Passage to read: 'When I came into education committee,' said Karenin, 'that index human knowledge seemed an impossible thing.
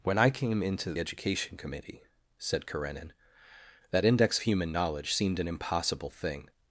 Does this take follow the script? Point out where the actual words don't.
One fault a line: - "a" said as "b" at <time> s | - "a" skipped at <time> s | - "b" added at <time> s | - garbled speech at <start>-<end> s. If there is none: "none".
none